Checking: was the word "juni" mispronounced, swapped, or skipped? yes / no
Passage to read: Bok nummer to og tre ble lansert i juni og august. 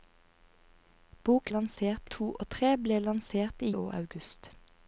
yes